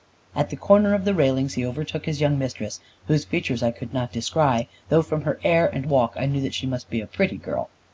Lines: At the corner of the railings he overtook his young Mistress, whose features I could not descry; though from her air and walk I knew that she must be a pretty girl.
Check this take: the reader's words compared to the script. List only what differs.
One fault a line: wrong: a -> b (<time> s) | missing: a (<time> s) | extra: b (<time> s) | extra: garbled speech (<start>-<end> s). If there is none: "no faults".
no faults